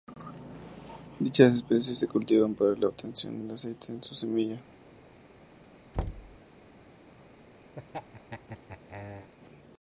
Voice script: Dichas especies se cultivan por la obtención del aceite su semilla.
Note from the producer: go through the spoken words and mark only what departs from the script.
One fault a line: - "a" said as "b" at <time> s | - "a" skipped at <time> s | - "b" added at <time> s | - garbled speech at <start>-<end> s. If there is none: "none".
- "por" said as "para" at 2.5 s
- "de" added at 3.9 s